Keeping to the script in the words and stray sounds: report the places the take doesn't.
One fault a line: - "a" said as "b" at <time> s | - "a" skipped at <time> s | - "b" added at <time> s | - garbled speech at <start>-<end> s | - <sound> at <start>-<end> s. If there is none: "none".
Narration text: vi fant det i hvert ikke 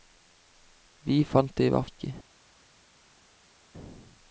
none